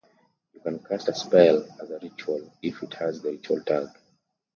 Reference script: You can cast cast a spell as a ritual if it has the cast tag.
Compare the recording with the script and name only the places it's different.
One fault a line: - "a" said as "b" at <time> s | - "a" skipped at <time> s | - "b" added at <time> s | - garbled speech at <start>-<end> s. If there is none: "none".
- "cast" skipped at 1.1 s
- "cast" said as "ritual" at 3.3 s